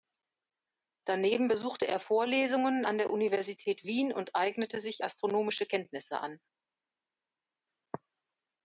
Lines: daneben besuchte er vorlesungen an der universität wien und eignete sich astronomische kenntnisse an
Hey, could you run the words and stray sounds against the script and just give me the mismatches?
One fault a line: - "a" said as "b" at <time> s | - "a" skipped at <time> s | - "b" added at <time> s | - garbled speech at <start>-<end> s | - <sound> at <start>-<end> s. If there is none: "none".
none